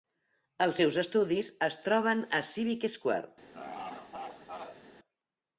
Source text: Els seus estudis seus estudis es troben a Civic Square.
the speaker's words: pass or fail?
fail